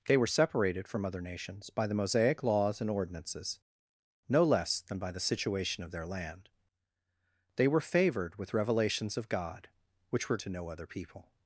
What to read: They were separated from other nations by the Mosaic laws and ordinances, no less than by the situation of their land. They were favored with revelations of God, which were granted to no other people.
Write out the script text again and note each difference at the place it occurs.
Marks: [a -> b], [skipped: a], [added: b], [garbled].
They were separated from other nations by the Mosaic laws and ordinances, no less than by the situation of their land. They were favored with revelations of God, which were [skipped: granted] to no other people.